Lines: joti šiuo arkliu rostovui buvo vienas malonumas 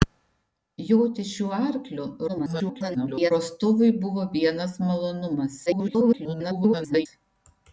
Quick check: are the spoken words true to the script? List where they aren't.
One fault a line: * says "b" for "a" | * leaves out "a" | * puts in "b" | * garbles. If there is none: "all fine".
* garbles
* garbles